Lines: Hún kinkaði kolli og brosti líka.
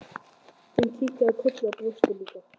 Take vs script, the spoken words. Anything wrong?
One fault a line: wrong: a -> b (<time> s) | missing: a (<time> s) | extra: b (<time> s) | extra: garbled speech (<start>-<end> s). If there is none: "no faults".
no faults